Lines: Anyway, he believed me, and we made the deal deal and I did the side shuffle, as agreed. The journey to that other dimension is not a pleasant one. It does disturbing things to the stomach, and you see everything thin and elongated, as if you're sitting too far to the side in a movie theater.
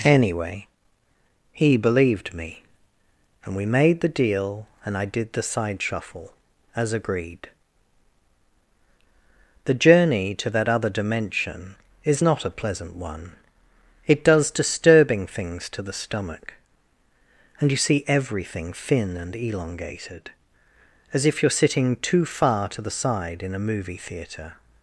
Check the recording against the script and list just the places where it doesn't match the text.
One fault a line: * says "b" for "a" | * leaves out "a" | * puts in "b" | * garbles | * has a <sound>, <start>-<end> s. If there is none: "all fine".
* leaves out "deal"